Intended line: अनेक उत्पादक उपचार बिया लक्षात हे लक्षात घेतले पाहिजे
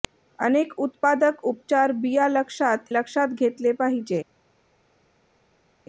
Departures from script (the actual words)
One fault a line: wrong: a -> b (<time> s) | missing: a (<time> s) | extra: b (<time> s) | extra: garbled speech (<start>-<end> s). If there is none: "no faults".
missing: हे (2.9 s)